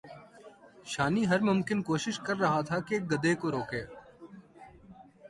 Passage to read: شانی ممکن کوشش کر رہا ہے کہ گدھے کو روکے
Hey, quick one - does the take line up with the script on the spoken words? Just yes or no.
no